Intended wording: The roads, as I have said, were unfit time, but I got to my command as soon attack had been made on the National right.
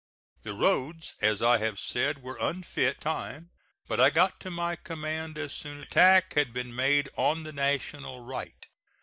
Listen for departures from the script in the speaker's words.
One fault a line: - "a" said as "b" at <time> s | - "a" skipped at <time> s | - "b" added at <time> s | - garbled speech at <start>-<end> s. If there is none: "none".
none